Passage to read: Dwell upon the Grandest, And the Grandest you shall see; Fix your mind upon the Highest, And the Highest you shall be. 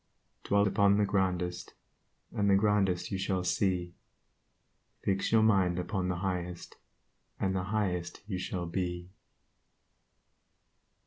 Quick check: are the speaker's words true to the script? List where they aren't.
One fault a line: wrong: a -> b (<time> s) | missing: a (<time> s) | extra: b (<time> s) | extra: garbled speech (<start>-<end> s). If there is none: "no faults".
no faults